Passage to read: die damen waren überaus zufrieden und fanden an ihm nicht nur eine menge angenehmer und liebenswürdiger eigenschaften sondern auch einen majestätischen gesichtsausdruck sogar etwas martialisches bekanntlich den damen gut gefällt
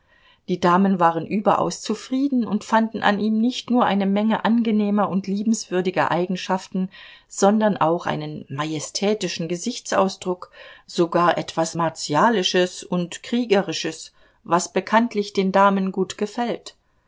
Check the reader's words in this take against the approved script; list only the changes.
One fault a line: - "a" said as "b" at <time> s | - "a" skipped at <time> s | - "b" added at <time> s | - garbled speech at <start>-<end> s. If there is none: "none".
- "und kriegerisches was" added at 12.8 s